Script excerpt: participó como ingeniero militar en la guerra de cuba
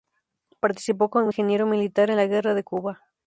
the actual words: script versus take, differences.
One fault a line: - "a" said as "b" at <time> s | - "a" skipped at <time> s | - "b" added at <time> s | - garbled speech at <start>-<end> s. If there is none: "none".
none